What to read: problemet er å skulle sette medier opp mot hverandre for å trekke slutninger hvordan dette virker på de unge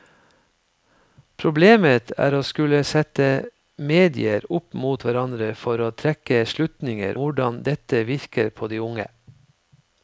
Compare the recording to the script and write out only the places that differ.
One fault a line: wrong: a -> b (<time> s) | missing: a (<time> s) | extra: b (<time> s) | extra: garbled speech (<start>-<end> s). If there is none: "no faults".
no faults